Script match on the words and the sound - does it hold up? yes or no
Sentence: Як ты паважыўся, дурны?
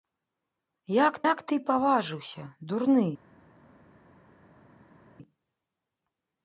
no